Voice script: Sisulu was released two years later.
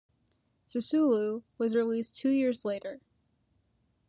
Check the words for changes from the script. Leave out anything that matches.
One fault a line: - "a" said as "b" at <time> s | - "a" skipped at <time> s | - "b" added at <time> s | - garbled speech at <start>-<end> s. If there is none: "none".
none